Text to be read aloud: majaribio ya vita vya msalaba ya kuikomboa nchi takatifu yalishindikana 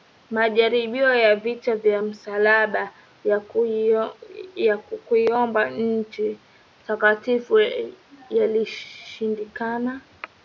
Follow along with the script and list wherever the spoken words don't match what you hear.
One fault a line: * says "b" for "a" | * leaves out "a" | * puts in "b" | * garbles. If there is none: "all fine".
all fine